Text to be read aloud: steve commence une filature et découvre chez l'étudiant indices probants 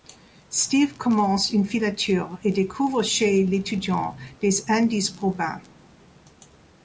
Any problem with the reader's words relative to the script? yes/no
yes